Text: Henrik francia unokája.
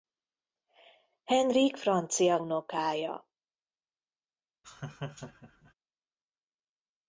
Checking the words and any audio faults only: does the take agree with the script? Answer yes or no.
no